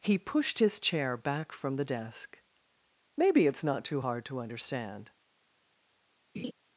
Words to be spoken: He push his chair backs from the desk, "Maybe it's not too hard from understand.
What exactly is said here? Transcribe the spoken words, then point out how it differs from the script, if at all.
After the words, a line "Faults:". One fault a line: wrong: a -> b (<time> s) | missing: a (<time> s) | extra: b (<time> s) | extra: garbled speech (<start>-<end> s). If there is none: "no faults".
He pushed his chair back from the desk, "Maybe it's not too hard to understand.
Faults:
wrong: push -> pushed (0.2 s)
wrong: backs -> back (1.2 s)
wrong: from -> to (4.3 s)